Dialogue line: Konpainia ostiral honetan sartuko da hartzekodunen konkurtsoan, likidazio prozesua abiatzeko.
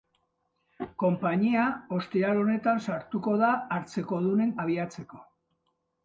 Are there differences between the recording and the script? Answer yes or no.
yes